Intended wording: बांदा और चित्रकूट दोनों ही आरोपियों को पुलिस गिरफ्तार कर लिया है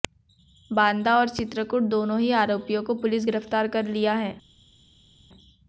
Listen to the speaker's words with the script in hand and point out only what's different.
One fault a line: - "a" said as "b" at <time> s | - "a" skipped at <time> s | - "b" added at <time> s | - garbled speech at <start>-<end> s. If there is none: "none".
none